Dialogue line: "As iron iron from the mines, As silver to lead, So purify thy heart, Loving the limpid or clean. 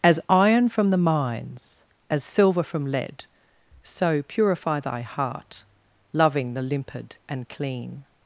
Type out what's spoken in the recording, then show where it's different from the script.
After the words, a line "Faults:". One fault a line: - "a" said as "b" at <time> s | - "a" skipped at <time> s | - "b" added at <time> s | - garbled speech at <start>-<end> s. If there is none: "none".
"As iron from the mines, As silver from lead, So purify thy heart, Loving the limpid and clean.
Faults:
- "iron" skipped at 0.7 s
- "to" said as "from" at 2.6 s
- "or" said as "and" at 7.3 s